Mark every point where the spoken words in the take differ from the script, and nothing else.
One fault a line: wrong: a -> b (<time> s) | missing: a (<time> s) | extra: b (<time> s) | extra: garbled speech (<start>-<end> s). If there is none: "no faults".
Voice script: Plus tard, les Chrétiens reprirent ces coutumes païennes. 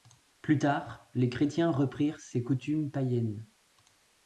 no faults